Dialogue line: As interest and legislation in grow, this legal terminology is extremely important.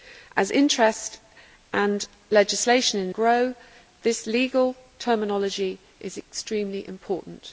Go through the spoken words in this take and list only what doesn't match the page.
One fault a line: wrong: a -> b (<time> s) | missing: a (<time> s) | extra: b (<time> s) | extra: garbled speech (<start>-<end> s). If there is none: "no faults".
no faults